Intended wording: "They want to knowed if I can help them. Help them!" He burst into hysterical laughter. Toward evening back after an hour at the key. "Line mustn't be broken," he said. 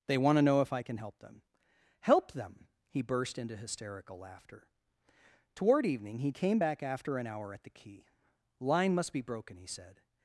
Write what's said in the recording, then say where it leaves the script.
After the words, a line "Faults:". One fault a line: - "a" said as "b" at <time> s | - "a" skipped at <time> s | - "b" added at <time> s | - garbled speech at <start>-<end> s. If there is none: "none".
"They want to know if I can help them. Help them!" He burst into hysterical laughter. Toward evening he came back after an hour at the key. "Line must be broken," he said.
Faults:
- "knowed" said as "know" at 0.4 s
- "he came" added at 6.2 s
- "mustn't" said as "must" at 8.9 s